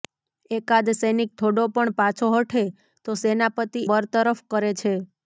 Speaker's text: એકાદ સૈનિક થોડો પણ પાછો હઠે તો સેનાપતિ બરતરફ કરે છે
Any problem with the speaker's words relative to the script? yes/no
no